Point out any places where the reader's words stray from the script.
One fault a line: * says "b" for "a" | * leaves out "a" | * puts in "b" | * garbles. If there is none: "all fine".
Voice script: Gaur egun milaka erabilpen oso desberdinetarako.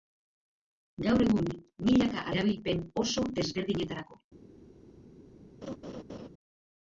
all fine